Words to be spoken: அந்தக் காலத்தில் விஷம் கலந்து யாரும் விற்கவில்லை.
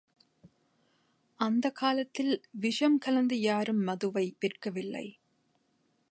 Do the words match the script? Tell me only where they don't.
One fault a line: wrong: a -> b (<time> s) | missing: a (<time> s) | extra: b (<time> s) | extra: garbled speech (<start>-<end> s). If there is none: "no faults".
extra: மதுவை (3.8 s)